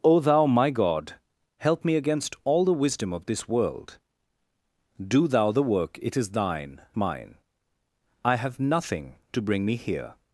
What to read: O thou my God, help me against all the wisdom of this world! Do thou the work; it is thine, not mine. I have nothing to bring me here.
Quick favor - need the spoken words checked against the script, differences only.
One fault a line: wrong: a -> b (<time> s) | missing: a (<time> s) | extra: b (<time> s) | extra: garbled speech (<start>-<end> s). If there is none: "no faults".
missing: not (6.8 s)